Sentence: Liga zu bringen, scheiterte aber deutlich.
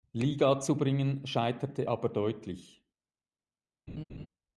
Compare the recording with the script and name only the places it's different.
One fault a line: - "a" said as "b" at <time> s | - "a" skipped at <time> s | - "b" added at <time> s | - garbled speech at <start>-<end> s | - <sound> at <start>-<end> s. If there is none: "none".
- laugh at 3.9-4.3 s